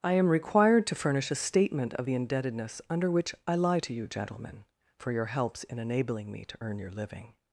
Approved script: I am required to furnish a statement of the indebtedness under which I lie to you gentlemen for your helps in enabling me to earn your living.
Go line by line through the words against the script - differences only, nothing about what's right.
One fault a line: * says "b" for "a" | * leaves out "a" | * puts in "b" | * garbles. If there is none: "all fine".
all fine